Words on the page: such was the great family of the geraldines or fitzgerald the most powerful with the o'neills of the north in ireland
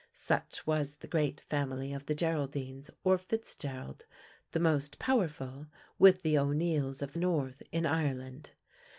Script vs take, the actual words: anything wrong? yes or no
no